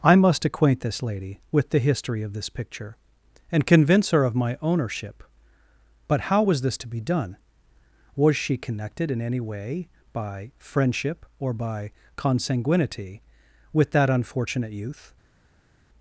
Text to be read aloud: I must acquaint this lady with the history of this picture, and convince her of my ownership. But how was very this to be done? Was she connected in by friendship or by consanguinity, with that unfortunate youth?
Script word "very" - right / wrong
wrong